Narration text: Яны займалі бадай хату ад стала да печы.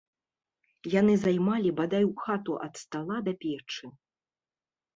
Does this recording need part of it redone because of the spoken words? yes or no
no